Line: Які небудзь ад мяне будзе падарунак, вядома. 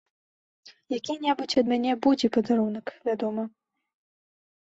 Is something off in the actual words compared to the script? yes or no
no